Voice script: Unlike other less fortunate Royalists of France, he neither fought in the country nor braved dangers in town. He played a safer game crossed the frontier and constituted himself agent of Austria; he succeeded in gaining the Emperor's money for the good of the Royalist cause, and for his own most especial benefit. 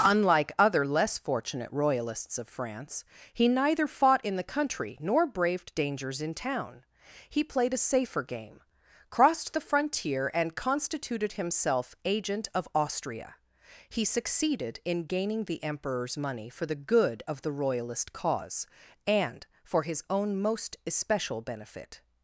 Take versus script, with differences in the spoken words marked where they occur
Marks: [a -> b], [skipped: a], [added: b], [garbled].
Unlike other less fortunate Royalists of France, he neither fought in the country nor braved dangers in town. He played a safer game crossed the frontier and constituted himself agent of Austria; he succeeded in gaining the Emperor's money for the good of the Royalist cause, and for his own most especial benefit.